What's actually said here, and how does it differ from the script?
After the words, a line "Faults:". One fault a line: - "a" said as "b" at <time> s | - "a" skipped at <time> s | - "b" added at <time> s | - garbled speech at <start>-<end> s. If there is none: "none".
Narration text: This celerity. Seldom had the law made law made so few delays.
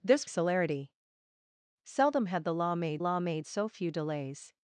This celerity. Seldom had the law made law made so few delays.
Faults:
none